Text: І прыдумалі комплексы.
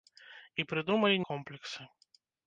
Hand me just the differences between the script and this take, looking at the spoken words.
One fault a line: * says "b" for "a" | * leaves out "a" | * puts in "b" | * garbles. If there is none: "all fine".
all fine